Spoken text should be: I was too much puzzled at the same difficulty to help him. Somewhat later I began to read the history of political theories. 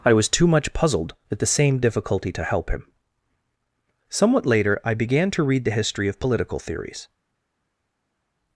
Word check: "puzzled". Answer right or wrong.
right